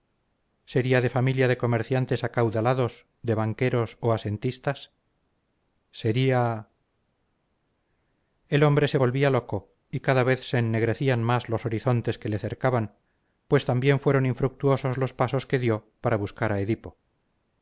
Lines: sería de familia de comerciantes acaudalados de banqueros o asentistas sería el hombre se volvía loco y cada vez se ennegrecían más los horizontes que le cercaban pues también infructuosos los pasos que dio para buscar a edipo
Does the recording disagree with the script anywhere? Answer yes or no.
yes